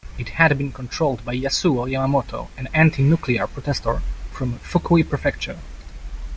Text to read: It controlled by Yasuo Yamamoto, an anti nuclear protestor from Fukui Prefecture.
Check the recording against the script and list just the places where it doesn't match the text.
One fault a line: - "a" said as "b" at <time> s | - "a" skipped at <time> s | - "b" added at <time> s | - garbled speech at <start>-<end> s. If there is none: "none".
- "had been" added at 0.3 s